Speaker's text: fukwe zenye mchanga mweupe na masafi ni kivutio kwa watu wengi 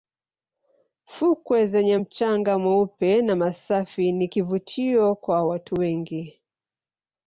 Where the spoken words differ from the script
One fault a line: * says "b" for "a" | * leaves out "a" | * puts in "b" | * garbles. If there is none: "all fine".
all fine